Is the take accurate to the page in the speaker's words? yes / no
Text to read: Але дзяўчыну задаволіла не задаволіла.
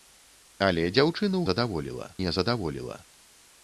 yes